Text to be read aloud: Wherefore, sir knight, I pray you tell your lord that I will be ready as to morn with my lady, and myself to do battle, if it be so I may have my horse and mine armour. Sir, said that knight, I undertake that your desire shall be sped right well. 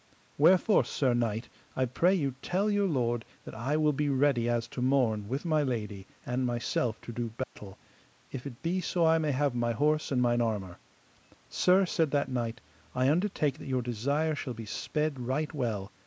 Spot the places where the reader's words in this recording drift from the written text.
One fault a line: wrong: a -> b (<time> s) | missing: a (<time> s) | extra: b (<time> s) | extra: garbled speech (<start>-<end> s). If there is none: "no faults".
no faults